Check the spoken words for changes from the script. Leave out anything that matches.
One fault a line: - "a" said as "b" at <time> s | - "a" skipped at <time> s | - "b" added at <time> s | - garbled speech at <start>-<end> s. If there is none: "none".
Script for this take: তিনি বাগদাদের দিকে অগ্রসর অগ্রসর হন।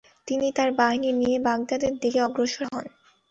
- "তার বাহিনী নিয়ে" added at 0.6 s
- "অগ্রসর" skipped at 2.6 s